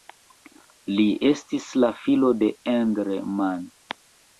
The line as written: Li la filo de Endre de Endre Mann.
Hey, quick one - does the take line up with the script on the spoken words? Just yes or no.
no